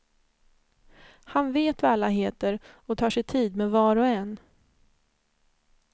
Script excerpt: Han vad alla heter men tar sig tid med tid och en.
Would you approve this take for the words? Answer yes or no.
no